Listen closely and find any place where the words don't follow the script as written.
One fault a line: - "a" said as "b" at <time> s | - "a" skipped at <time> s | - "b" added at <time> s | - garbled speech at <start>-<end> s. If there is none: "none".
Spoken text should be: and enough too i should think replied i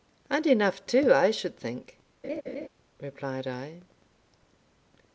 none